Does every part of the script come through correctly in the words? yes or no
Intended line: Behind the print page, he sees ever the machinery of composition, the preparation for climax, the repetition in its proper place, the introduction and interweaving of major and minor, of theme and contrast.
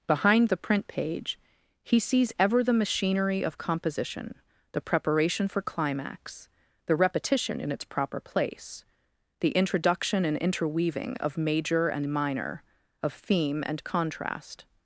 yes